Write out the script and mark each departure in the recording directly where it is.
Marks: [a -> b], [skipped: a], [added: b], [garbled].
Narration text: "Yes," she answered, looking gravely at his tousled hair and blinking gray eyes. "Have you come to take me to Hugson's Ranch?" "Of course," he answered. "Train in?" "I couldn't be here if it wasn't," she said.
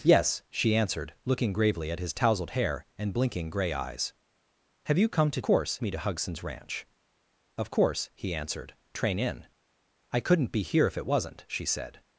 "Yes," she answered, looking gravely at his tousled hair and blinking gray eyes. "Have you come to [take -> course] me to Hugson's Ranch?" "Of course," he answered. "Train in?" "I couldn't be here if it wasn't," she said.